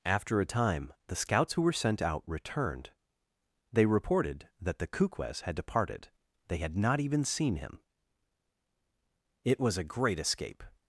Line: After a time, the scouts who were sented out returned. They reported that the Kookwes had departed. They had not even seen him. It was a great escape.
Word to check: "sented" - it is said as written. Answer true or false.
false